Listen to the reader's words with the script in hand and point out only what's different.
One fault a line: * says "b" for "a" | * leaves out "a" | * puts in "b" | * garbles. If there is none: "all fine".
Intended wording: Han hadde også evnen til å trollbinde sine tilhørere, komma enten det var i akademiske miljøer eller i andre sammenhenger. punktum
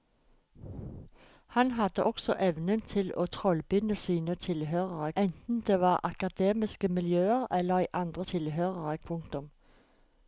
* leaves out "komma"
* says "tilhørere" for "sammenhenger"